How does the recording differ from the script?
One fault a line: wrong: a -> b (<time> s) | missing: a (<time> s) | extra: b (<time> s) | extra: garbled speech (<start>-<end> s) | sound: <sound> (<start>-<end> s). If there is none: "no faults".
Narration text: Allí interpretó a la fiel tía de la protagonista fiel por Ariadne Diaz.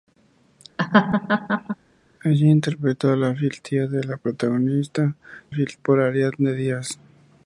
sound: laugh (0.8-1.8 s)